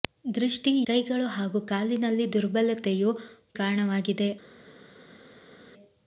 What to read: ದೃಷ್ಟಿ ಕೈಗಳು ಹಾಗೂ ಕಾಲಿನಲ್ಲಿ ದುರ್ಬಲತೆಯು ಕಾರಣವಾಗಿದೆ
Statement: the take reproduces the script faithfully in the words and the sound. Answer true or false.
true